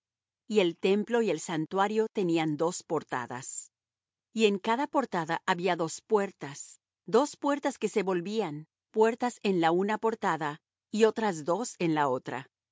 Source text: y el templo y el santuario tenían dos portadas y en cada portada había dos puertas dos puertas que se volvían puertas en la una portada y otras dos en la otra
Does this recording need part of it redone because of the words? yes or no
no